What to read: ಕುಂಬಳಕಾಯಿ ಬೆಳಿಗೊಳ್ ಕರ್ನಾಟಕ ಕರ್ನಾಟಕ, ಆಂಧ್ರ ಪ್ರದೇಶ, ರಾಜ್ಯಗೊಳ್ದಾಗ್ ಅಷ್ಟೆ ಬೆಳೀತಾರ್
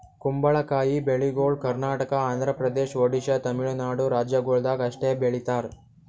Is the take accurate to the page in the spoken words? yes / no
no